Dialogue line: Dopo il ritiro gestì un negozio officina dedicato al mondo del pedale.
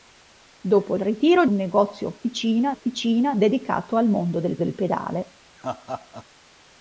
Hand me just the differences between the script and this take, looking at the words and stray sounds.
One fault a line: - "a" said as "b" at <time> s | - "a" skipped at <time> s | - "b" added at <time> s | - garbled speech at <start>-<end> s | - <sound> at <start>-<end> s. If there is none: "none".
- "gestì" skipped at 1.4 s
- "officina" added at 2.7 s
- "del" added at 4.6 s
- laugh at 5.6-6.3 s